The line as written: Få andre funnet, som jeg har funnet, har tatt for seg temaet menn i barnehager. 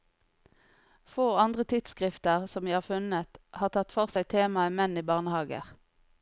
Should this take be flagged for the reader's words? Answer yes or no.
yes